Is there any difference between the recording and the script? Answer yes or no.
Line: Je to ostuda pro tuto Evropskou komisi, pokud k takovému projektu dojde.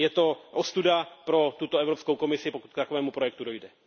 no